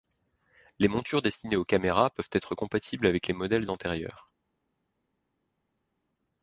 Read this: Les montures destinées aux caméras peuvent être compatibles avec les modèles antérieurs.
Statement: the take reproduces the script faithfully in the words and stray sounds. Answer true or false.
true